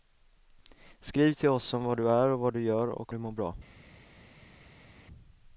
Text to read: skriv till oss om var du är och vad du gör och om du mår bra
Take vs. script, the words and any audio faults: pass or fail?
fail